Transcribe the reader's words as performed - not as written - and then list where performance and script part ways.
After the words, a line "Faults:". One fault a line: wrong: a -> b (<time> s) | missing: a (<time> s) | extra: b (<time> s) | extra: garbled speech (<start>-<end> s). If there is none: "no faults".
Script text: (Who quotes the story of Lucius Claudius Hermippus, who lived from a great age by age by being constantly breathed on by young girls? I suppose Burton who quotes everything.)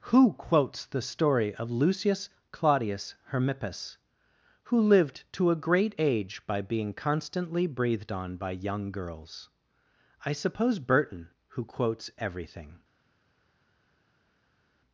(Who quotes the story of Lucius Claudius Hermippus, who lived to a great age by being constantly breathed on by young girls? I suppose Burton who quotes everything.)
Faults:
wrong: from -> to (5.3 s)
missing: age by (6.6 s)